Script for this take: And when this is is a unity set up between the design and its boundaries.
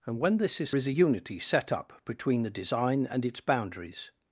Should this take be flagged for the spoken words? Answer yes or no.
no